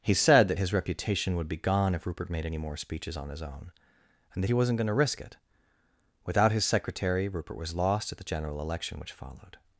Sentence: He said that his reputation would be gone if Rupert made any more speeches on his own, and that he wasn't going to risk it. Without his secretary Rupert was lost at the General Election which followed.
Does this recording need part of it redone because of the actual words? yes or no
no